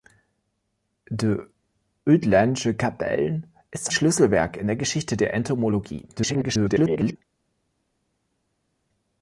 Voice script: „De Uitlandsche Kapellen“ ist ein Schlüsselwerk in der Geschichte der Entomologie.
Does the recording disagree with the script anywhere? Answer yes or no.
yes